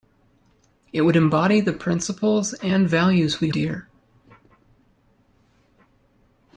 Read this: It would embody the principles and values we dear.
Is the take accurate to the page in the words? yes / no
yes